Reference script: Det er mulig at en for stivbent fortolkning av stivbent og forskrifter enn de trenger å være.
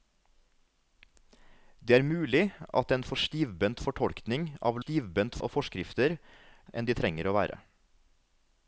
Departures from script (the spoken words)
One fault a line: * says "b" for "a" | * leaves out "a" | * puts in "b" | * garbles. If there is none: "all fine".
all fine